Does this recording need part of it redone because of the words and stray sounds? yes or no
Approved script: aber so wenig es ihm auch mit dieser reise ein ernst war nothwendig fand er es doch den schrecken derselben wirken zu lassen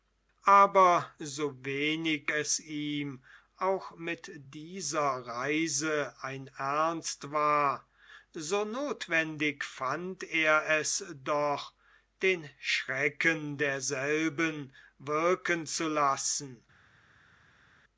yes